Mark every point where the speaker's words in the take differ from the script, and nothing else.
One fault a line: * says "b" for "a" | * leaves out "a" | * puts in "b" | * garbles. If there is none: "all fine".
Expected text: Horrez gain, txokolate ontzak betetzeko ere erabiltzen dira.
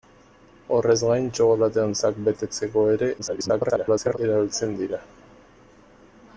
* garbles